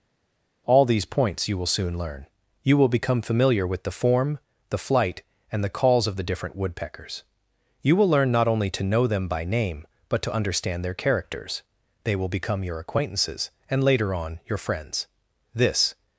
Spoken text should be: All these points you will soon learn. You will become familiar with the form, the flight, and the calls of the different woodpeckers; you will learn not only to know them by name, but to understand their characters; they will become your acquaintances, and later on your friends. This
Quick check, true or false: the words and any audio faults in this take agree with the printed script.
true